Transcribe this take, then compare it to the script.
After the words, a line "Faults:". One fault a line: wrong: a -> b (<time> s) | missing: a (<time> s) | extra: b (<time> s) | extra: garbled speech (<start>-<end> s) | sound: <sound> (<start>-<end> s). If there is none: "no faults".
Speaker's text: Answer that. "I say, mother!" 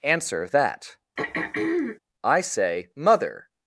Answer that. "I say, mother!"
Faults:
sound: throat clearing (1.2-2.0 s)